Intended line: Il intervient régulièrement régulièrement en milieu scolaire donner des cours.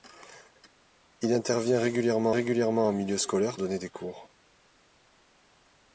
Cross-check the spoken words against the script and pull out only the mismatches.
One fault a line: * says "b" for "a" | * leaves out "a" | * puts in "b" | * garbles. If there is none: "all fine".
all fine